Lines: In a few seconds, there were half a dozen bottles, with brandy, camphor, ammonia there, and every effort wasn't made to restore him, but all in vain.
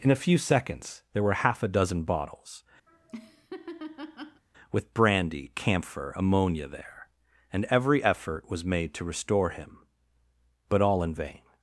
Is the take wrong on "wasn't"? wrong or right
wrong